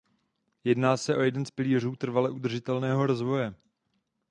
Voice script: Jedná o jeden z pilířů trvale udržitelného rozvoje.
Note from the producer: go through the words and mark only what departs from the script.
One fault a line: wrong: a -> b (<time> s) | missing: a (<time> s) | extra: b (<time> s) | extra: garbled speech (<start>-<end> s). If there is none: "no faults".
extra: se (1.0 s)